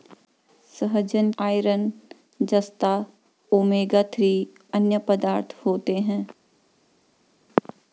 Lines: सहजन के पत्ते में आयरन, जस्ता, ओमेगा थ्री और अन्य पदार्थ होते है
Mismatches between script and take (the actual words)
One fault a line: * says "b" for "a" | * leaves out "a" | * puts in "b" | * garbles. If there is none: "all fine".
* leaves out "के पत्ते में"
* leaves out "और"